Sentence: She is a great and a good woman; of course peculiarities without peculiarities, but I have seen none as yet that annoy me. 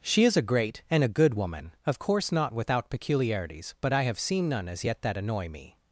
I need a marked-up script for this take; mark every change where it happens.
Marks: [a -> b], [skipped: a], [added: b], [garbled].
She is a great and a good woman; of course [peculiarities -> not] without peculiarities, but I have seen none as yet that annoy me.